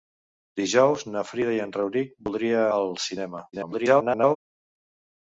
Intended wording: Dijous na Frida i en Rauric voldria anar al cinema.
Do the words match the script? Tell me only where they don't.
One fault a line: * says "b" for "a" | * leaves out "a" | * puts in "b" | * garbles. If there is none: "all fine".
* leaves out "anar"
* garbles